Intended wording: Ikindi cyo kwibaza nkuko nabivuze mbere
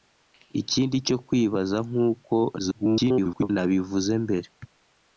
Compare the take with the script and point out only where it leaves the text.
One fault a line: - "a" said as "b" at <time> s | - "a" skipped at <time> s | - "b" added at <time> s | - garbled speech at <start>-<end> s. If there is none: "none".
- garbled speech at 2.6-3.5 s